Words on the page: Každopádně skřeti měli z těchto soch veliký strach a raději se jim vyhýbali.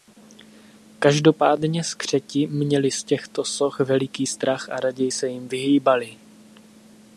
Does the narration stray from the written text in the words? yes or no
no